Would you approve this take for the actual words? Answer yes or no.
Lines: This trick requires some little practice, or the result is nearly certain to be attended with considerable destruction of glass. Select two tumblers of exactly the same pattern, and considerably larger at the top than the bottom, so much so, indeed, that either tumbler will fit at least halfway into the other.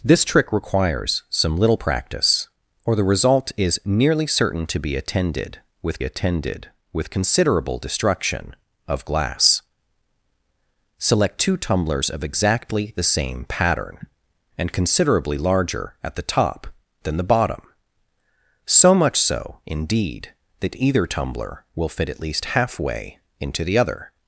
no